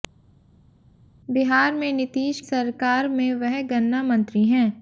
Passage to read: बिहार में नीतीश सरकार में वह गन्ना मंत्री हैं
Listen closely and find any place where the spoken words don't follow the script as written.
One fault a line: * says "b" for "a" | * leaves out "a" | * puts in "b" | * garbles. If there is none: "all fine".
all fine